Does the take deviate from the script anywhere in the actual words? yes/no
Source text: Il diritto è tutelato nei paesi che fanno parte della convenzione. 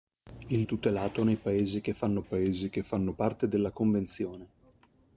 yes